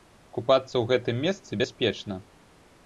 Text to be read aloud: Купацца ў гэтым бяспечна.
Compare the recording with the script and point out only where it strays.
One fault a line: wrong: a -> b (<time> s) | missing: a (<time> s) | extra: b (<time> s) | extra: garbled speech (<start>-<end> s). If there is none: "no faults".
extra: месцы (1.3 s)